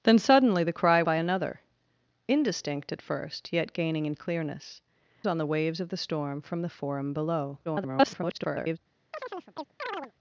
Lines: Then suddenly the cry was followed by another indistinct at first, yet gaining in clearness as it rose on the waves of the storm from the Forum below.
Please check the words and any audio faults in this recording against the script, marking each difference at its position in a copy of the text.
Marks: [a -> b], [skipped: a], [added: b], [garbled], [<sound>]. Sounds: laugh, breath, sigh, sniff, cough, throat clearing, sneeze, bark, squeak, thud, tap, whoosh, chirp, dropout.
Then suddenly the cry [skipped: was followed] by another indistinct at first, yet gaining in clearness [skipped: as it rose] on the waves of the storm from the Forum below. [garbled] [chirp]